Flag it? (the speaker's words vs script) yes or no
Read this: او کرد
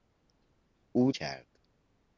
no